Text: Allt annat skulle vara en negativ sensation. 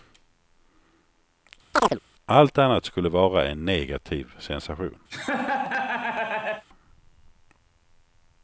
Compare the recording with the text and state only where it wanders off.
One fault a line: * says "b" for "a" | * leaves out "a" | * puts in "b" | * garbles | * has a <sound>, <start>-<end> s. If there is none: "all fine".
* has a chirp, 1.7-2.0 s
* has a laugh, 5.1-6.6 s